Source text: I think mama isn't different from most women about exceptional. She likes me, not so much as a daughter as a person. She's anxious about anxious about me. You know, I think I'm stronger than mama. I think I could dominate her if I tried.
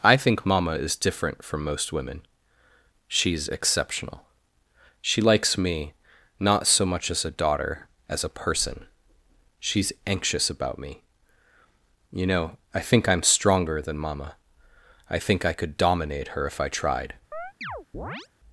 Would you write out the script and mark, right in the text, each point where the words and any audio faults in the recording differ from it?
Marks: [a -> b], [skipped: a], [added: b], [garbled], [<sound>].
I think mama [isn't -> is] different from most women [about -> she's] exceptional. She likes me, not so much as a daughter as a person. She's anxious about [skipped: anxious about] me. You know, I think I'm stronger than mama. I think I could dominate her if I tried. [chirp]